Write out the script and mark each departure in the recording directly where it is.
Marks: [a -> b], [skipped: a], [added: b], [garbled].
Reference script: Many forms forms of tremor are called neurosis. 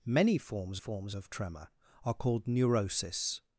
Many forms forms of tremor are called neurosis.